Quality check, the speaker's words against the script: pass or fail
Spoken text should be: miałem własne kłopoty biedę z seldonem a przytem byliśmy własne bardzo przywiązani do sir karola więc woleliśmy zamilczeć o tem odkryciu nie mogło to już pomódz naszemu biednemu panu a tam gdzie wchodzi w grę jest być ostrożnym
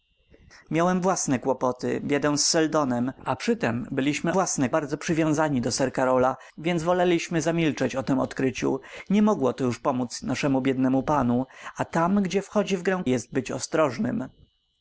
pass